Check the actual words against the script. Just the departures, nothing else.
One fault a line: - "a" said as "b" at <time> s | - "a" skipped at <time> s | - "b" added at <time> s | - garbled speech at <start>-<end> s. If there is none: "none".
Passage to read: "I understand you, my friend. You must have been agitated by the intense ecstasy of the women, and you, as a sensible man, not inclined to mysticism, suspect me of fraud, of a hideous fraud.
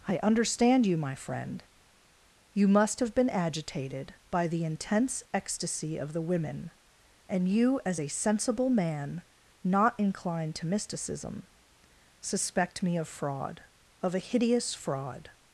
none